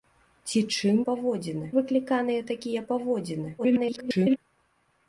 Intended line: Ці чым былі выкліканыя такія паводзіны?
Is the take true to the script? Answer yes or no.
no